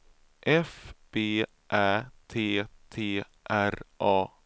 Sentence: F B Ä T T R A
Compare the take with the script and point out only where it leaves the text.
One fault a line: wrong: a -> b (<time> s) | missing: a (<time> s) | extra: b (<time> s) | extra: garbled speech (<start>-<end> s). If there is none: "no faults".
no faults